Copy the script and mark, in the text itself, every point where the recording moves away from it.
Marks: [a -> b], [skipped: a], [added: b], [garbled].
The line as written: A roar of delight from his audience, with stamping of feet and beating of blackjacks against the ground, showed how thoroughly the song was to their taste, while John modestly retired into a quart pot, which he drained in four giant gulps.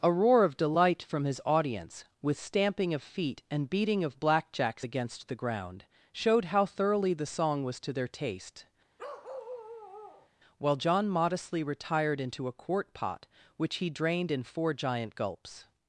A roar of delight from his audience, with stamping of feet and beating of blackjacks against the ground, showed how thoroughly the song was to their taste, while John modestly retired into a quart pot, which he drained in four giant gulps.